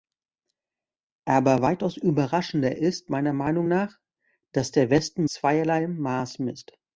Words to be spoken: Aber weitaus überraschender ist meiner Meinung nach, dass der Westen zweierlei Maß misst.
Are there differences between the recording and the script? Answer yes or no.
no